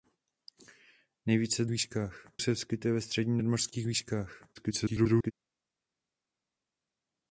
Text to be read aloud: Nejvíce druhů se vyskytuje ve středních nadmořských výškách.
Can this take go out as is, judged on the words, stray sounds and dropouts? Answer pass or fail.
fail